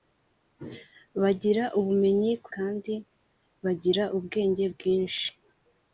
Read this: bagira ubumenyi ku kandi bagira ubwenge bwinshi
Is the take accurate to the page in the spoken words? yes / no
yes